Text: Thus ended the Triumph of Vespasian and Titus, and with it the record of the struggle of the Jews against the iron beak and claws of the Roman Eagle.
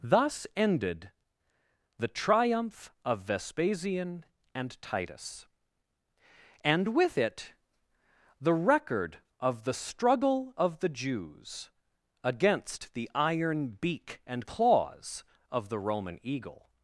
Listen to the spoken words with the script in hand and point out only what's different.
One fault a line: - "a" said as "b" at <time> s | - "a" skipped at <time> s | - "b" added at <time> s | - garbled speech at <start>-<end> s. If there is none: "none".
none